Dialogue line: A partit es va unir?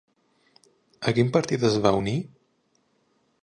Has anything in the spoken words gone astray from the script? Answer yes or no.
yes